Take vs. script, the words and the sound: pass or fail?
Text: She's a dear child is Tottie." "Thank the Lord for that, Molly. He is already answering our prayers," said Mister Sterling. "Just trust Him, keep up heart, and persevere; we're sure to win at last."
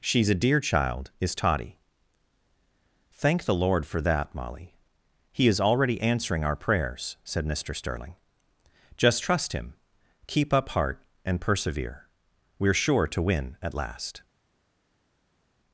pass